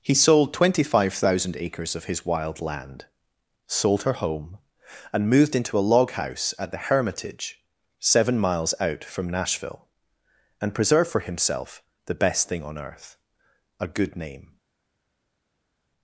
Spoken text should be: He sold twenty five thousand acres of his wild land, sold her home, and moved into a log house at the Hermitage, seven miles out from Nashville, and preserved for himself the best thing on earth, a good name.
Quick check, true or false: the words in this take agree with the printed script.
true